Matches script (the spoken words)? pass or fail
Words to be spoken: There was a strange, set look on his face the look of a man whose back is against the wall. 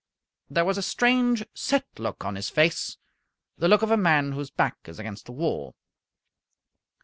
pass